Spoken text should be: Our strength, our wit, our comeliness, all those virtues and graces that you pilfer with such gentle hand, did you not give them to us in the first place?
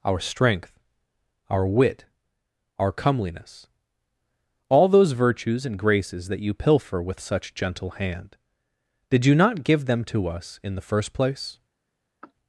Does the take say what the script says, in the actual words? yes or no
yes